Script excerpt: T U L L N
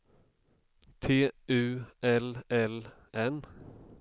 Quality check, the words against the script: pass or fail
pass